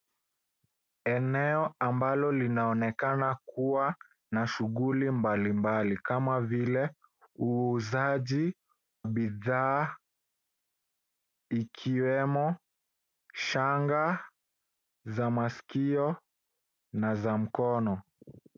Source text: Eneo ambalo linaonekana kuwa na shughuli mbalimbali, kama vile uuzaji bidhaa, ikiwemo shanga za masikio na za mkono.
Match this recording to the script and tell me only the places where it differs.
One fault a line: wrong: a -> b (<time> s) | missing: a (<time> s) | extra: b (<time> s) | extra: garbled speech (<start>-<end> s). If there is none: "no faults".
no faults